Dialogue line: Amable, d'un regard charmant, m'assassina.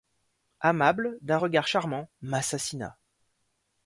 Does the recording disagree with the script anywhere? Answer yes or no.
no